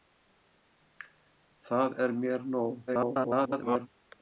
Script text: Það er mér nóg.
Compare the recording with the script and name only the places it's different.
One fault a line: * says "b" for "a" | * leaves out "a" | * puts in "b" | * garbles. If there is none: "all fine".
* garbles